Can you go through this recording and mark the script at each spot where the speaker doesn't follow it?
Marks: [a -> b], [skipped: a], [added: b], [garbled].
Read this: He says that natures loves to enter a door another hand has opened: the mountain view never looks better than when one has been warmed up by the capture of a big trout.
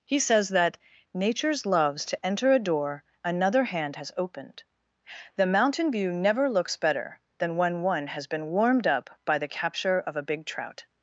He says that natures loves to enter a door another hand has opened: the mountain view never looks better than when one has been warmed up by the capture of a big trout.